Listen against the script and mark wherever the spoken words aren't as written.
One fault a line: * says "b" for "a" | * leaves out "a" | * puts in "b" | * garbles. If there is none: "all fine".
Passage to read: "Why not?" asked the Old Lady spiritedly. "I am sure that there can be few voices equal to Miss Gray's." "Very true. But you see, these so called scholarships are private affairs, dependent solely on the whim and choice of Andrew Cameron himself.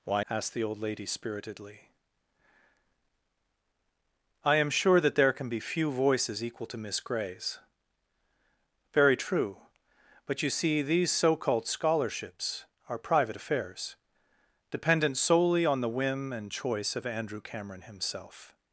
* leaves out "not"